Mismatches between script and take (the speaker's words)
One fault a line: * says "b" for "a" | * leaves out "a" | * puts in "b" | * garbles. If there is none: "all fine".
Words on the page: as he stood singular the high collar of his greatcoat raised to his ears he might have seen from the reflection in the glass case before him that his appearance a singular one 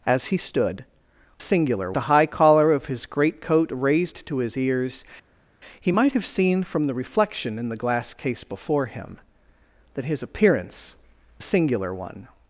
all fine